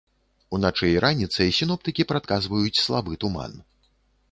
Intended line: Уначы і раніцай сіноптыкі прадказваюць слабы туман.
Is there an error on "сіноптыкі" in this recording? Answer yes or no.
no